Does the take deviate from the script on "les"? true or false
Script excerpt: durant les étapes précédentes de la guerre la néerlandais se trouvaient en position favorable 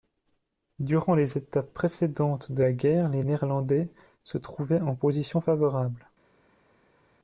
false